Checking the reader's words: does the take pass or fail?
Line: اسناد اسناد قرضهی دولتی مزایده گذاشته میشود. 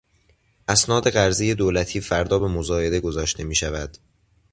fail